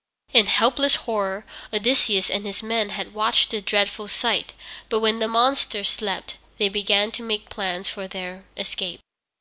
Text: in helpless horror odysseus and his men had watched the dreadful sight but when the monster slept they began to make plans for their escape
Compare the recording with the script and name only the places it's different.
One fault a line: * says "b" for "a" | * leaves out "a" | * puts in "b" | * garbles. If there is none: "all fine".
all fine